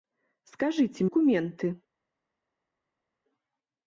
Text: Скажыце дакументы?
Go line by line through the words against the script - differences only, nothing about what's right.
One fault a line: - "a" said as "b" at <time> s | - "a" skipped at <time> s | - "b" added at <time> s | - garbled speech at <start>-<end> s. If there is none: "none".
none